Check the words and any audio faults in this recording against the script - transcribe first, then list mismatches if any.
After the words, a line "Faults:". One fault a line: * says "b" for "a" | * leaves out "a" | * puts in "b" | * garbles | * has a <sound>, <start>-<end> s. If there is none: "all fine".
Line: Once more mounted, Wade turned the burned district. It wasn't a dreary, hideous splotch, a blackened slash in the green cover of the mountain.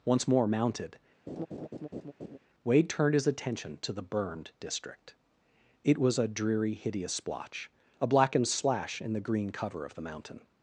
Once more mounted, Wade turned his attention to the burned district. It was a dreary, hideous splotch, a blackened slash in the green cover of the mountain.
Faults:
* has a laugh, 1.3-2.4 s
* puts in "his attention to"
* says "was" for "wasn't"